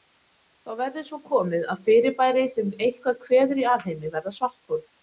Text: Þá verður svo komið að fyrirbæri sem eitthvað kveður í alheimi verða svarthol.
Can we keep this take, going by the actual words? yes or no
yes